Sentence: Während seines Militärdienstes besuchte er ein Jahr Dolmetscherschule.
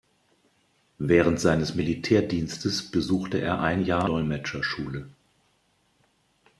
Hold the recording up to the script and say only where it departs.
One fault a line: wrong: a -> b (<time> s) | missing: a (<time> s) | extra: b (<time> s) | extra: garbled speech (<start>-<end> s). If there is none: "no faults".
no faults